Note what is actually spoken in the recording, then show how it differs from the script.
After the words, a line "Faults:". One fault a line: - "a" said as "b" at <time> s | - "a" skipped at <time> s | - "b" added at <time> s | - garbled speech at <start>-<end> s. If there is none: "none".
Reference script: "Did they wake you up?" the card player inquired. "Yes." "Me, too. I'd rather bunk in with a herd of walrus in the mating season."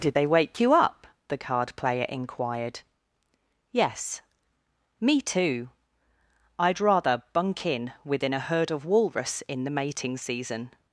"Did they wake you up?" the card player inquired. "Yes." "Me, too. I'd rather bunk in within a herd of walrus in the mating season."
Faults:
- "with" said as "within" at 8.0 s